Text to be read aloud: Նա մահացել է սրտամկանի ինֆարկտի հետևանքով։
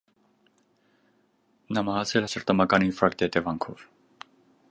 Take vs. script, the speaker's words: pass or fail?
pass